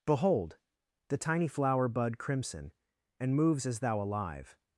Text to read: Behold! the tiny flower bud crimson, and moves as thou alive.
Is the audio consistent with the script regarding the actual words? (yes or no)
yes